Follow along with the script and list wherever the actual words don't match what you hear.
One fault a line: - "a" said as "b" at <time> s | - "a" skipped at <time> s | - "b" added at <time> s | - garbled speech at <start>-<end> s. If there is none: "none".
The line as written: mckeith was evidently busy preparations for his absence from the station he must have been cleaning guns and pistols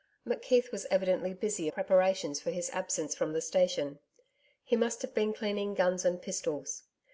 none